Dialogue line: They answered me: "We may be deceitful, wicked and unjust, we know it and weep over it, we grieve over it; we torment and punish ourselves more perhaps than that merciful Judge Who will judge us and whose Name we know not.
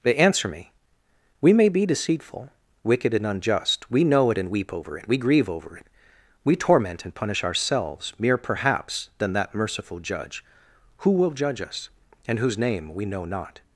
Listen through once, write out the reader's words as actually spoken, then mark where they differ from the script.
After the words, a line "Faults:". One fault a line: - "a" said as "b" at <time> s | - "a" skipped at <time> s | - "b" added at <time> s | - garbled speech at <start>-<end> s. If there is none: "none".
They answer me: "We may be deceitful, wicked and unjust, we know it and weep over it, we grieve over it; we torment and punish ourselves mere perhaps than that merciful Judge Who will judge us and whose Name we know not.
Faults:
- "answered" said as "answer" at 0.1 s
- "more" said as "mere" at 8.2 s